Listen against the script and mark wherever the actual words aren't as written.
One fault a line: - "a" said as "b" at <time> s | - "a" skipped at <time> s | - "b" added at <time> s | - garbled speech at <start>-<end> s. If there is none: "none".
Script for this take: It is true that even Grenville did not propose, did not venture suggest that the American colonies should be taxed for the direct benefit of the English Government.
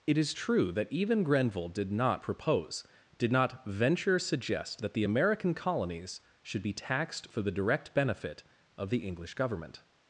none